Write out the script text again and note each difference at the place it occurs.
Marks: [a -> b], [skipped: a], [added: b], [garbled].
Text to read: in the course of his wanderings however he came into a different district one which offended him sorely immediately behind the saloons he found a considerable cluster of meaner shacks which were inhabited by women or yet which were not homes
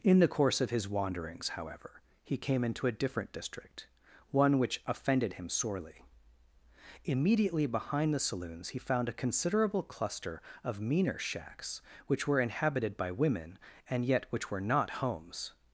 in the course of his wanderings however he came into a different district one which offended him sorely immediately behind the saloons he found a considerable cluster of meaner shacks which were inhabited by women [or -> and] yet which were not homes